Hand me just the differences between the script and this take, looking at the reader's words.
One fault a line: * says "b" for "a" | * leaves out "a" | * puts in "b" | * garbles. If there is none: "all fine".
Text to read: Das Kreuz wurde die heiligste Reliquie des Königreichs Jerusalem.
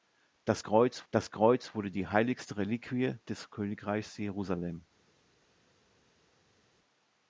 * puts in "das Kreuz"